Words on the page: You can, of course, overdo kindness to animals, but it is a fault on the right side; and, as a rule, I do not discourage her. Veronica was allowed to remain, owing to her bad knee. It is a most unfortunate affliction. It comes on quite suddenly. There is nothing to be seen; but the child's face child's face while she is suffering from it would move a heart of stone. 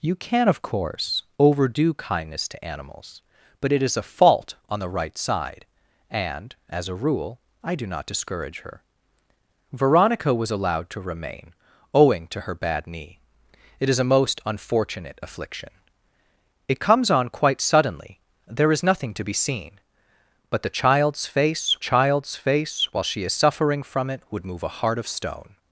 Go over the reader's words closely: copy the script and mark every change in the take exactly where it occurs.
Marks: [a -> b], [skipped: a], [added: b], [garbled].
You can, of course, overdo kindness to animals, but it is a fault on the right side; and, as a rule, I do not discourage her. Veronica was allowed to remain, owing to her bad knee. It is a most unfortunate affliction. It comes on quite suddenly. There is nothing to be seen; but the child's face child's face while she is suffering from it would move a heart of stone.